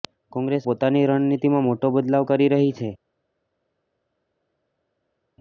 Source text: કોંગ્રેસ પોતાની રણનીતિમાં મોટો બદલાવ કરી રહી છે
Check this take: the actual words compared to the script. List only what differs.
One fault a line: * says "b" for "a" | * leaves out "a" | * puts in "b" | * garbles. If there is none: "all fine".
all fine